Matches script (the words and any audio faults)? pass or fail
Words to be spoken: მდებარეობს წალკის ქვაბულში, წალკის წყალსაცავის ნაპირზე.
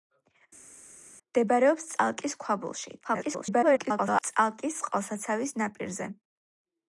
fail